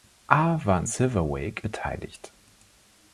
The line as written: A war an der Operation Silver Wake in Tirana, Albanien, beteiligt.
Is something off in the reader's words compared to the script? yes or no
yes